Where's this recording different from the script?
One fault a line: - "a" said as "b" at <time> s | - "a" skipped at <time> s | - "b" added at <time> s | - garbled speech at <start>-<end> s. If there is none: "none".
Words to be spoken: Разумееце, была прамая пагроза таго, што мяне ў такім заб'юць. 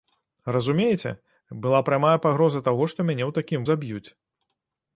none